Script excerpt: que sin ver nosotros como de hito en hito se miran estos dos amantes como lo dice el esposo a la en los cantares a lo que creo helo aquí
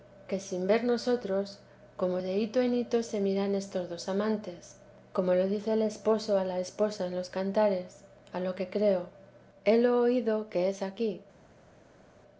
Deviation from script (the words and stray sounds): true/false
true